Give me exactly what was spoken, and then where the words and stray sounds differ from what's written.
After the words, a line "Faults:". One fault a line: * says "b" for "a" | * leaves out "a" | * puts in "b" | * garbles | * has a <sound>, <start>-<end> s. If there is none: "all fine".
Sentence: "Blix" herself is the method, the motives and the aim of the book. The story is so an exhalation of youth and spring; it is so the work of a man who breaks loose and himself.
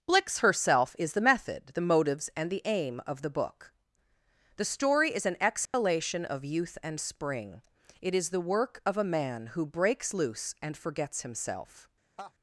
"Blix" herself is the method, the motives and the aim of the book. The story is an exhalation of youth and spring; it is the work of a man who breaks loose and forgets himself.
Faults:
* leaves out "so"
* has a dropout, 5.7-5.7 s
* leaves out "so"
* puts in "forgets"
* has a laugh, 12.2-12.3 s